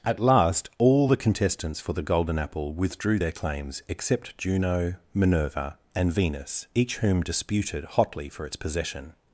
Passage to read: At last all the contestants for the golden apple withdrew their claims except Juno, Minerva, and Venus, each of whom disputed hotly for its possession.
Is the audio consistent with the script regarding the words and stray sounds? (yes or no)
no